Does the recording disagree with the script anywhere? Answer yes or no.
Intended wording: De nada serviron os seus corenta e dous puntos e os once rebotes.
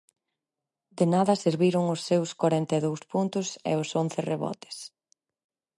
no